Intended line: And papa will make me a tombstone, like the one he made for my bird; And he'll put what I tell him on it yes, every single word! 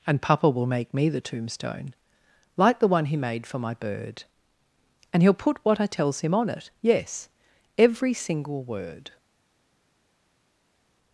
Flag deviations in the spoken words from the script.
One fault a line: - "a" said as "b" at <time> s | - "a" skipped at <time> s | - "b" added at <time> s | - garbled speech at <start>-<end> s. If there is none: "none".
- "a" said as "the" at 1.1 s
- "tell" said as "tells" at 5.9 s